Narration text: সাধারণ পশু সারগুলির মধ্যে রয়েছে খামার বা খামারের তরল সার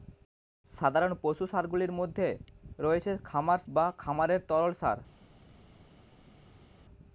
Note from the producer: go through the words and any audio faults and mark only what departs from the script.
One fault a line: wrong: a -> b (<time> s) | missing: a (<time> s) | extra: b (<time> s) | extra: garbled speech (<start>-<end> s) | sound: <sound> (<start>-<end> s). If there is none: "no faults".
no faults